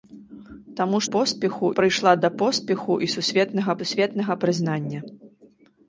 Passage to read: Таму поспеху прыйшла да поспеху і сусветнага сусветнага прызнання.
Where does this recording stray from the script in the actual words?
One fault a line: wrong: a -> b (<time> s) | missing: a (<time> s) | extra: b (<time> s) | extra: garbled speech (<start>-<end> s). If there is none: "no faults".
no faults